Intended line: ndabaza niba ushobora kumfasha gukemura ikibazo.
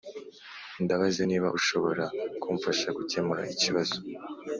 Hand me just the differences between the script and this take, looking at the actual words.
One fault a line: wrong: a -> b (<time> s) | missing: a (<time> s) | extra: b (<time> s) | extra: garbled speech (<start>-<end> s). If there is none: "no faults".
no faults